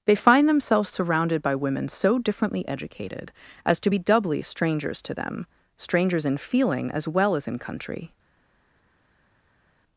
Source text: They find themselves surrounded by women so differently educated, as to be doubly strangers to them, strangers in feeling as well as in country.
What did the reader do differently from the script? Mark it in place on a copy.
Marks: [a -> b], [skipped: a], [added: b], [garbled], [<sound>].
They find themselves surrounded by women so differently educated, as to be doubly strangers to them, strangers in feeling as well as in country.